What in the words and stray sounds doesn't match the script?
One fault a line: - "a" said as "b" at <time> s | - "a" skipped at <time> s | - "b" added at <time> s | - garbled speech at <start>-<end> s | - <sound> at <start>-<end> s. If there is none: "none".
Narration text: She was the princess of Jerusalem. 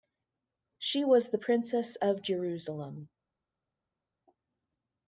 none